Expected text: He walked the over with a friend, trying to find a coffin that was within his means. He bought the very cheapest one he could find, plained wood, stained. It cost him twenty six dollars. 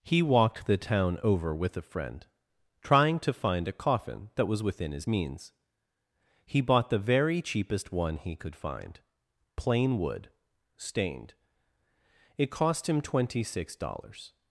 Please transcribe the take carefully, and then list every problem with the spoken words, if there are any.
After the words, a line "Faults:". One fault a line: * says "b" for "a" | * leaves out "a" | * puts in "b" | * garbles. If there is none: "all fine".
He walked the town over with a friend, trying to find a coffin that was within his means. He bought the very cheapest one he could find, plain wood, stained. It cost him twenty six dollars.
Faults:
* puts in "town"
* says "plain" for "plained"